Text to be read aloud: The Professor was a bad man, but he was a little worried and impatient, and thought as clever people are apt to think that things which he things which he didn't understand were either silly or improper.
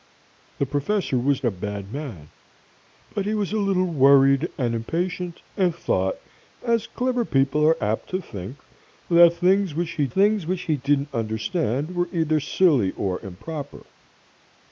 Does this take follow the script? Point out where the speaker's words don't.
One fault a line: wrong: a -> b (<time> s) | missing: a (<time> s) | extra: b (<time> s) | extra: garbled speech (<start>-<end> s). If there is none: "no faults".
no faults